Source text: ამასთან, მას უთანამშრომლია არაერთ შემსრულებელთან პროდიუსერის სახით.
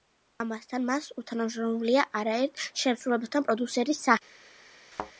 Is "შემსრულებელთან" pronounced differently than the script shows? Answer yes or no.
no